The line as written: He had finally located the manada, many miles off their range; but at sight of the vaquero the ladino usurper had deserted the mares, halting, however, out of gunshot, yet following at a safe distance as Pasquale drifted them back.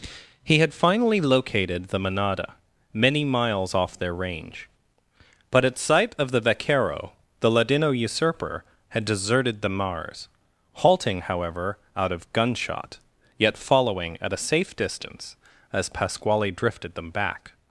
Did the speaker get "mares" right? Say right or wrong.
wrong